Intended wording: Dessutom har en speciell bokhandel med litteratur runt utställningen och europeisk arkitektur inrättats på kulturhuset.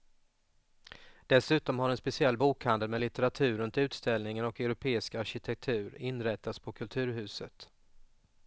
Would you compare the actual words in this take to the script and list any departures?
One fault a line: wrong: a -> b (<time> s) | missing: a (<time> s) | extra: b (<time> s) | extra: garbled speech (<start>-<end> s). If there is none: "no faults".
no faults